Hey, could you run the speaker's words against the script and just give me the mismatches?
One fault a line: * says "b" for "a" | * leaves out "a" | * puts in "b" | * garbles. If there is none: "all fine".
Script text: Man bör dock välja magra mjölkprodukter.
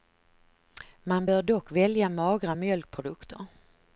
all fine